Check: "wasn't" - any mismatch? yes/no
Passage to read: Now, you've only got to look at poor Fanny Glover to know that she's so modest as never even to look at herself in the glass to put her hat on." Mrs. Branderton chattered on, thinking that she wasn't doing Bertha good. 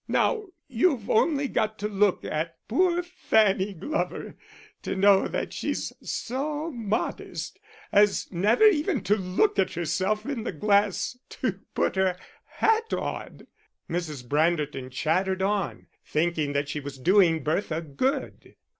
yes